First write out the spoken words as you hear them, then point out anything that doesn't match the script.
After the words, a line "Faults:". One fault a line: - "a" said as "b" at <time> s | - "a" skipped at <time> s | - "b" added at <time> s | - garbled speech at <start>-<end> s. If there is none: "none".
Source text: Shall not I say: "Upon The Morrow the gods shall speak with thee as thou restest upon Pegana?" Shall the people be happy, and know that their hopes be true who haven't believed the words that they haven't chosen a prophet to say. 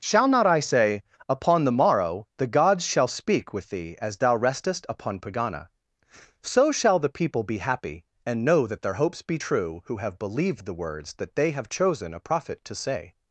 Shall not I say: "Upon The Morrow the gods shall speak with thee as thou restest upon Pegana?" So shall the people be happy, and know that their hopes be true who have believed the words that they have chosen a prophet to say.
Faults:
- "So" added at 6.4 s
- "haven't" said as "have" at 10.0 s
- "haven't" said as "have" at 11.5 s